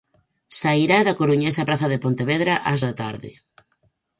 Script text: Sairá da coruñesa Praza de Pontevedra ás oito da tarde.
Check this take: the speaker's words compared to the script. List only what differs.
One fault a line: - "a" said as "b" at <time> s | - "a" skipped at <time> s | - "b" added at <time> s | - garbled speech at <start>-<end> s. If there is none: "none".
- "oito" skipped at 2.8 s